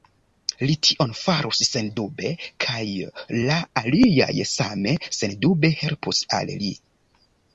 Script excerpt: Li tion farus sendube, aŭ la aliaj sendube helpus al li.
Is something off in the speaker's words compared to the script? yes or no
yes